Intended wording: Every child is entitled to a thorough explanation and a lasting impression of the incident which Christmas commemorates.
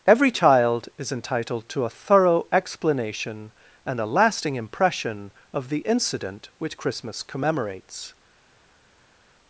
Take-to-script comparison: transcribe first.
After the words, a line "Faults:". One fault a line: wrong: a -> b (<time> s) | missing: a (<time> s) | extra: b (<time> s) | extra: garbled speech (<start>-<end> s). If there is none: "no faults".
Every child is entitled to a thorough explanation and a lasting impression of the incident which Christmas commemorates.
Faults:
no faults